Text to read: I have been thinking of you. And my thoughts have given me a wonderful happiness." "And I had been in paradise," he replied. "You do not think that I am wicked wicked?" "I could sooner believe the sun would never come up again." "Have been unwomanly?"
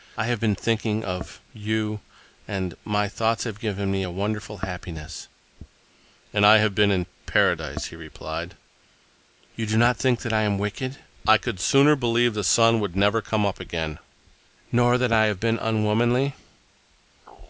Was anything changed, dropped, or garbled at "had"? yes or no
yes